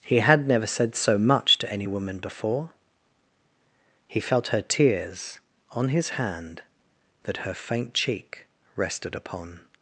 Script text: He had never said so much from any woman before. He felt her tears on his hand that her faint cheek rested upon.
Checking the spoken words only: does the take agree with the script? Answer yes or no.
no